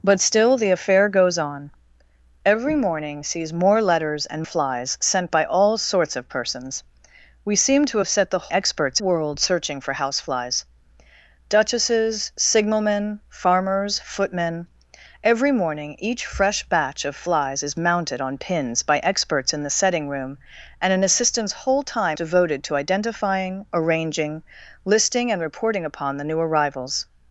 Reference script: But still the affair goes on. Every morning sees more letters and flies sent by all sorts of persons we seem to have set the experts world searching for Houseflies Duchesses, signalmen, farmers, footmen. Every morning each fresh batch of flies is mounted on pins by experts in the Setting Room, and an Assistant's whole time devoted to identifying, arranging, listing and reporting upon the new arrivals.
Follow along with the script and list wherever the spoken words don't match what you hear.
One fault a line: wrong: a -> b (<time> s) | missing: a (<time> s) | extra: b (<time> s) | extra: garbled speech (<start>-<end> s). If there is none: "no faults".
no faults